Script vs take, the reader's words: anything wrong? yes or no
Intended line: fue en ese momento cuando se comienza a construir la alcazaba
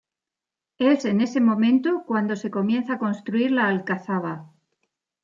yes